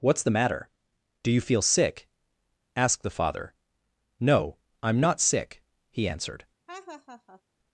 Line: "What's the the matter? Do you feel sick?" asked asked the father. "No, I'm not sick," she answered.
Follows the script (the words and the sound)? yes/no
no